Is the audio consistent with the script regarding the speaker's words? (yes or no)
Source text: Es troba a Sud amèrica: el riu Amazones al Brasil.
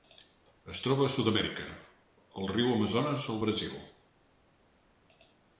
yes